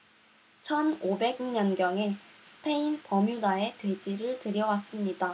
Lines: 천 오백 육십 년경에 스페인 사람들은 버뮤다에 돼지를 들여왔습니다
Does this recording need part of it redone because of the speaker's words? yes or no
yes